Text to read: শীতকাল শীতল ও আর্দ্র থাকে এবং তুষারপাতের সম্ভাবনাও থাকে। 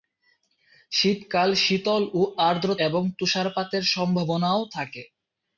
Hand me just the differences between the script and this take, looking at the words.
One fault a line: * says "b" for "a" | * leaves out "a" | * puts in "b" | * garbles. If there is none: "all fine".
* leaves out "থাকে"